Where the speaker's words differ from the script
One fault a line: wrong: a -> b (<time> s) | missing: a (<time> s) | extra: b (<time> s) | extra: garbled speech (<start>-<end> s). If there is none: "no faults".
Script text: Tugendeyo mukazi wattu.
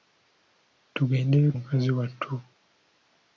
no faults